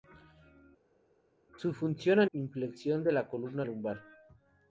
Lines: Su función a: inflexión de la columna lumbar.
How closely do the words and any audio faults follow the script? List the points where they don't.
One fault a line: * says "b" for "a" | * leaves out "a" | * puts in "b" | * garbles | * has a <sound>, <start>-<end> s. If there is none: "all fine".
all fine